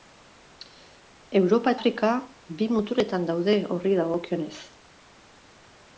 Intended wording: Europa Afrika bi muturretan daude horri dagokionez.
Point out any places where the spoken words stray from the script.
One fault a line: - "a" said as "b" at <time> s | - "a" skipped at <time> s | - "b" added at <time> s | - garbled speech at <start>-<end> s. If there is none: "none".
none